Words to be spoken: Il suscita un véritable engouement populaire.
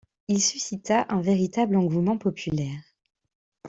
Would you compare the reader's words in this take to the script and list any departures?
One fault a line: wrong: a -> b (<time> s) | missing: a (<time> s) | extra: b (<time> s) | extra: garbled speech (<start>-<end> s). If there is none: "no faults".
no faults